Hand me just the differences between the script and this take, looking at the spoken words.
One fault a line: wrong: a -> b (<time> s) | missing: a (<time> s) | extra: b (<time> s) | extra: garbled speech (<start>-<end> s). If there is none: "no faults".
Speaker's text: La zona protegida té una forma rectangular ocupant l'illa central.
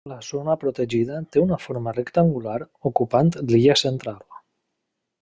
no faults